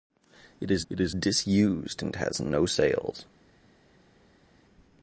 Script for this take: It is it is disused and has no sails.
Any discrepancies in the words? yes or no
no